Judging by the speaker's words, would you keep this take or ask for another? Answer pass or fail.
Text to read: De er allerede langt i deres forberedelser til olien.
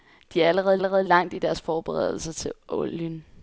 fail